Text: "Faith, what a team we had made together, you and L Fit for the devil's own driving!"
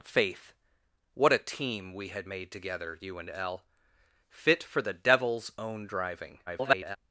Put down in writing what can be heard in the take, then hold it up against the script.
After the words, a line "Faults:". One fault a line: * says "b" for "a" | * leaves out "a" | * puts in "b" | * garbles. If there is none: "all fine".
"Faith, what a team we had made together, you and L Fit for the devil's own driving!" [garbled]
Faults:
* garbles